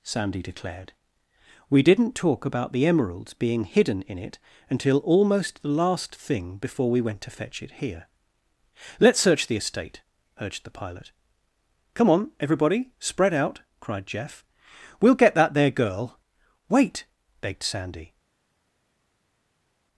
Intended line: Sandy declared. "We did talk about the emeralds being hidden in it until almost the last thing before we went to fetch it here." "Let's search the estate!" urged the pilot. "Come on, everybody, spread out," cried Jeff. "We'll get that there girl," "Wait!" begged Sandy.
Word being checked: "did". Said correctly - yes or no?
no